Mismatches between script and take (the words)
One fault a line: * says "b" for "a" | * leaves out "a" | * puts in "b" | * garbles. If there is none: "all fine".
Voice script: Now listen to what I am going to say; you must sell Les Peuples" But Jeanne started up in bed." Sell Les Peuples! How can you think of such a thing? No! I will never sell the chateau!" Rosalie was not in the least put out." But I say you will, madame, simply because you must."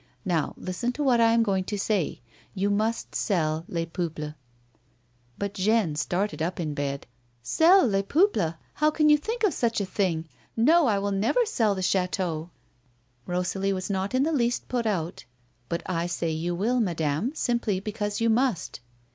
all fine